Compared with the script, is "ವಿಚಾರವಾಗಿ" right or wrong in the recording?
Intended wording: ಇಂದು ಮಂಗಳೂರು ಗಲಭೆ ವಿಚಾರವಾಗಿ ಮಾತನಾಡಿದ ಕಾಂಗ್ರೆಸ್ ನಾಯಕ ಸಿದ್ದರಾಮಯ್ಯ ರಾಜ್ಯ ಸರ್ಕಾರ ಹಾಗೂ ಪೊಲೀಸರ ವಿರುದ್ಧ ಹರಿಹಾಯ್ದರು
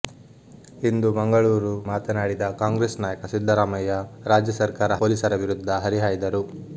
wrong